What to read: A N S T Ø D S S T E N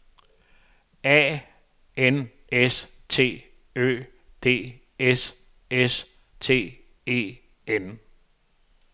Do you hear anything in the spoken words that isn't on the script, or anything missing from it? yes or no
no